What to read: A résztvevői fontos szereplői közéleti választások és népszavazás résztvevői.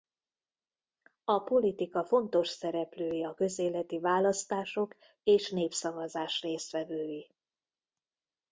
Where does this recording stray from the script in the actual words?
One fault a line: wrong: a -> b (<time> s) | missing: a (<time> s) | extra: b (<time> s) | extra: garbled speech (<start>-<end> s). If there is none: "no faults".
wrong: résztvevői -> politika (1.4 s)
extra: a (3.2 s)